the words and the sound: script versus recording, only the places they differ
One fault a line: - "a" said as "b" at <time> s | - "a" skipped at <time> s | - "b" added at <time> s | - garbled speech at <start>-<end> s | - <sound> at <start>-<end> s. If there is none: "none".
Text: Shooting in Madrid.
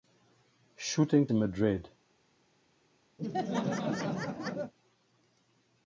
- laugh at 3.2-4.7 s